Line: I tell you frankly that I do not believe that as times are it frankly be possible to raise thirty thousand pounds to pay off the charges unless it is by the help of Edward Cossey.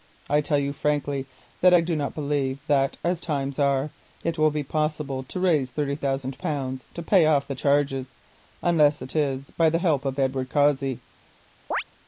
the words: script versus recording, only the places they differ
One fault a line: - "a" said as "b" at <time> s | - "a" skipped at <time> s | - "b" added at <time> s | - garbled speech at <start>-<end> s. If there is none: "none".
- "frankly" said as "will" at 4.4 s